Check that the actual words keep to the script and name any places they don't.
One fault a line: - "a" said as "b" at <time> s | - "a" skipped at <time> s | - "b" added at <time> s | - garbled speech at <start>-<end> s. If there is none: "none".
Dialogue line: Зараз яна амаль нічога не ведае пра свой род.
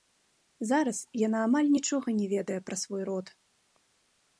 none